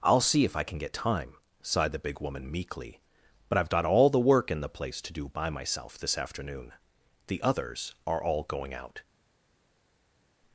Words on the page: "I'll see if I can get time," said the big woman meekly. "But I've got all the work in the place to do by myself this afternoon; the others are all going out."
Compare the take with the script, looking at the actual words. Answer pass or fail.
fail